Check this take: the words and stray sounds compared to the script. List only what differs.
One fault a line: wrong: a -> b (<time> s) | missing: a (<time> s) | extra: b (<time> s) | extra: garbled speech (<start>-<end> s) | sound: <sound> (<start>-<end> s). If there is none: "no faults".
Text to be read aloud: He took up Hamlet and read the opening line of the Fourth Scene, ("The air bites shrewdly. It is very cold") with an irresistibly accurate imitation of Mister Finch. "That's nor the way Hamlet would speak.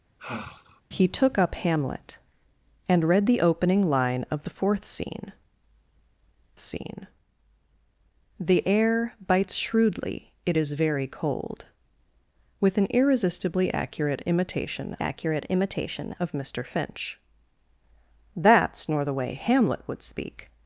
sound: sigh (0.2-0.8 s)
extra: Scene (6.6 s)
extra: accurate imitation (15.0 s)